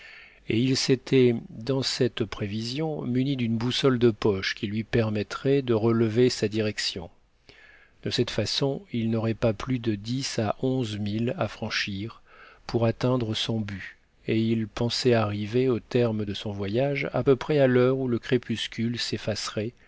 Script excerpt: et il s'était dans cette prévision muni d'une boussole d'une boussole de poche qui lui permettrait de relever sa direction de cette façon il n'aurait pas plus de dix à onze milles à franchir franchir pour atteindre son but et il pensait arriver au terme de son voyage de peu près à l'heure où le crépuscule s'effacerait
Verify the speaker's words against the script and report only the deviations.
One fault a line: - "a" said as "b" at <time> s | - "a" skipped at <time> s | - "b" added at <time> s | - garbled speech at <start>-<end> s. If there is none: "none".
- "d'une boussole" skipped at 4.0 s
- "franchir" skipped at 12.2 s
- "de" said as "à" at 17.1 s